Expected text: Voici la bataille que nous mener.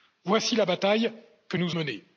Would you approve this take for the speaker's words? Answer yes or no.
yes